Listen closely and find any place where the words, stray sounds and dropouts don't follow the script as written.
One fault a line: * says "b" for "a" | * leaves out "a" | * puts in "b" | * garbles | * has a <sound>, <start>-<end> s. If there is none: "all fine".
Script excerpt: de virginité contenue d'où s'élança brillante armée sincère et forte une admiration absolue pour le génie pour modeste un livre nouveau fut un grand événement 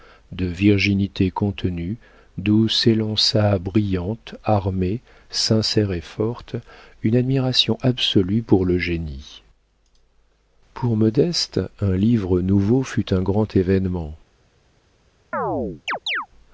* has a chirp, 15.3-16.3 s